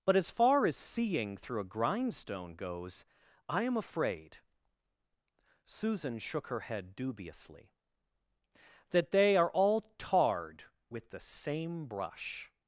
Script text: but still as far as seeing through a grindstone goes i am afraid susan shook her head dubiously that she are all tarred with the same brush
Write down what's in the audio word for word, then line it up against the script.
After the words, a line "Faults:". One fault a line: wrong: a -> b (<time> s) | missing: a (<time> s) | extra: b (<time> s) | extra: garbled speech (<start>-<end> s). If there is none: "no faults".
but as far as seeing through a grindstone goes i am afraid susan shook her head dubiously that they are all tarred with the same brush
Faults:
missing: still (0.1 s)
wrong: she -> they (9.1 s)